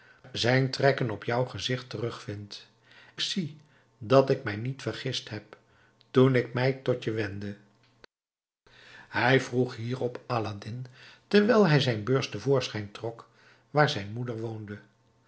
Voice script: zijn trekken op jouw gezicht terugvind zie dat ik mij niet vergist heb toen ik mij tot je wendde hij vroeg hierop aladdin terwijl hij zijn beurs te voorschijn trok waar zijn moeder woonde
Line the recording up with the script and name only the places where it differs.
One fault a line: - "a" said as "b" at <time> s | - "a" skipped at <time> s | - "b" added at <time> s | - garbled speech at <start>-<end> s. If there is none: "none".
none